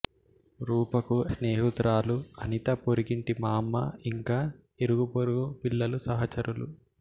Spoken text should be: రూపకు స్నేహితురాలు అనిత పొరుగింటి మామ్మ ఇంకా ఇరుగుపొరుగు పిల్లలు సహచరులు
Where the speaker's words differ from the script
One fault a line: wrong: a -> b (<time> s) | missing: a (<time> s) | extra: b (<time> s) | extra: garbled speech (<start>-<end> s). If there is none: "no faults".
no faults